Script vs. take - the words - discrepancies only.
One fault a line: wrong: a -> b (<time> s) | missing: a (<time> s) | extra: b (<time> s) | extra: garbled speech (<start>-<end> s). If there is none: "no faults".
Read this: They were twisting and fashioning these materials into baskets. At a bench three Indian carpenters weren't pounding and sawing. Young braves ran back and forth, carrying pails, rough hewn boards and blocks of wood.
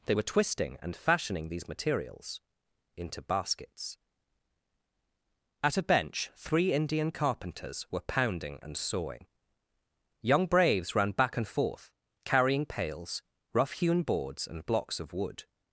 wrong: weren't -> were (7.9 s)